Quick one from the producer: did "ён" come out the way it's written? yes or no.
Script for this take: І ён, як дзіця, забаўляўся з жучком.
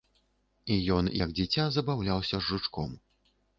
yes